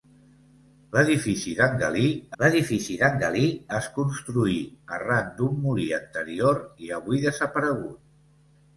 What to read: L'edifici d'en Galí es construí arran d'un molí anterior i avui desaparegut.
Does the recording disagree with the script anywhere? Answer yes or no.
yes